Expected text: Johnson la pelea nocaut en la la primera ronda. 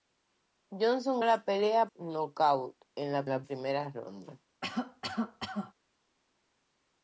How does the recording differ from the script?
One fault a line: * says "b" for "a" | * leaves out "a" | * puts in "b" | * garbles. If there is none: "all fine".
all fine